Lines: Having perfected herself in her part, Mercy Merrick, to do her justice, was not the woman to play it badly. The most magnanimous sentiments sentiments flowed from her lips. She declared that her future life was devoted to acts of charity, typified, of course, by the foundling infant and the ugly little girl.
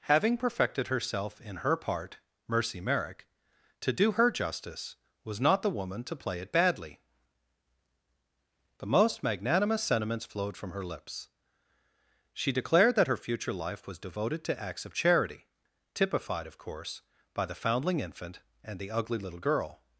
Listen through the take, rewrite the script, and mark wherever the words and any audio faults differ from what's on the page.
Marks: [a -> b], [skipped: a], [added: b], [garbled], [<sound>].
Having perfected herself in her part, Mercy Merrick, to do her justice, was not the woman to play it badly. The most magnanimous sentiments [skipped: sentiments] flowed from her lips. She declared that her future life was devoted to acts of charity, typified, of course, by the foundling infant and the ugly little girl.